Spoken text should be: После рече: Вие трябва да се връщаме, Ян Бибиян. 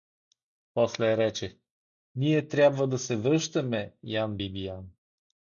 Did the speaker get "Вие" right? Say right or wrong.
wrong